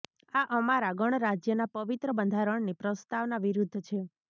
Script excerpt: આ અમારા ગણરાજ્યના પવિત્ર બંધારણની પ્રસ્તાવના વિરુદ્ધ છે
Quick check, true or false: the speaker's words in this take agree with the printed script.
true